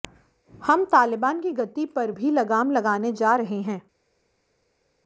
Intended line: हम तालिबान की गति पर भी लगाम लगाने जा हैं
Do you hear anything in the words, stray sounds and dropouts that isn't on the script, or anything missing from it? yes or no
yes